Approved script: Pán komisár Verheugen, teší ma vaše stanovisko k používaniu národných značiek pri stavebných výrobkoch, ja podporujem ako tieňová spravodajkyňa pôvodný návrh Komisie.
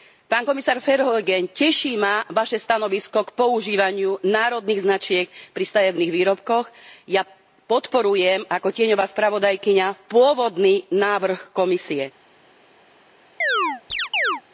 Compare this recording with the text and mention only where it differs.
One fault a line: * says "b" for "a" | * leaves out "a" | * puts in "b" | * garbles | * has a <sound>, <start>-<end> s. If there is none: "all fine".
* has a chirp, 13.4-14.4 s